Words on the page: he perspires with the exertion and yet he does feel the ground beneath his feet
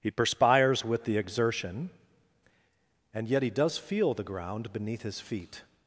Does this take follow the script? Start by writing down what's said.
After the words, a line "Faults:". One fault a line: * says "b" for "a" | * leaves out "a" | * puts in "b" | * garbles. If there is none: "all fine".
he perspires with the exertion and yet he does feel the ground beneath his feet
Faults:
all fine